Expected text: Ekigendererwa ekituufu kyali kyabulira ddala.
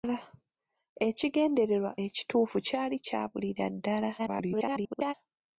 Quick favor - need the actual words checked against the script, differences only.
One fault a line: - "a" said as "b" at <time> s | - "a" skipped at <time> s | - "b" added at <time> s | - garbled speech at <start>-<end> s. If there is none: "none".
- garbled speech at 4.2-5.1 s